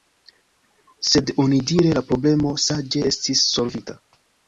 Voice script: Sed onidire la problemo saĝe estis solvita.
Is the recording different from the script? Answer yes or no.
no